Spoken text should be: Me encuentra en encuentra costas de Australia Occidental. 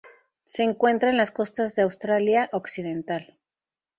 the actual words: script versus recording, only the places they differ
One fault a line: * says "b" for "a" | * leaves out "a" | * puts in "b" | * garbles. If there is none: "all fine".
* says "Se" for "Me"
* says "las" for "encuentra"